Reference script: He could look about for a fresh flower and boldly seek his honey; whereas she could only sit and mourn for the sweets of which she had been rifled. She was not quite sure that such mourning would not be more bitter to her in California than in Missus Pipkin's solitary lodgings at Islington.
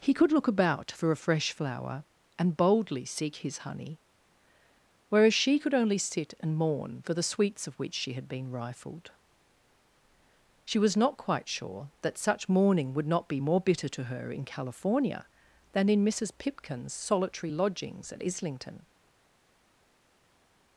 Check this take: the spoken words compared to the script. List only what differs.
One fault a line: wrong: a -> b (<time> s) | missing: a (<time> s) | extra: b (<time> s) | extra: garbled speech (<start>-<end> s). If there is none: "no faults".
no faults